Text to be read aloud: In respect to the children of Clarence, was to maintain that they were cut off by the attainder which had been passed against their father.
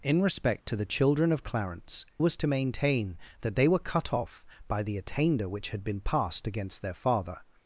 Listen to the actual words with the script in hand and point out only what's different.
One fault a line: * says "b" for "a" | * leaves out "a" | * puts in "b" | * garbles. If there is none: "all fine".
all fine